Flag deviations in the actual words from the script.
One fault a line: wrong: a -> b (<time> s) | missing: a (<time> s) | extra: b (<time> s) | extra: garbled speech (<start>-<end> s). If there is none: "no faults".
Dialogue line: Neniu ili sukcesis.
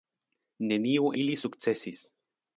no faults